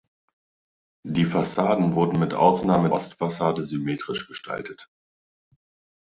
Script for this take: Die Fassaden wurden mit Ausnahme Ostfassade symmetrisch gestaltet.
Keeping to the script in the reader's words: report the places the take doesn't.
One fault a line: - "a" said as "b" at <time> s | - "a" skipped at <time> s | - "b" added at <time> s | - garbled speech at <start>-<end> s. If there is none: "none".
none